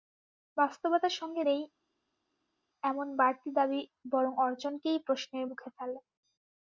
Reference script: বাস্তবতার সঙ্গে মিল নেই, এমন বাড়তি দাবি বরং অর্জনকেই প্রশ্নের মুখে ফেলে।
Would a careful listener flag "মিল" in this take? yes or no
yes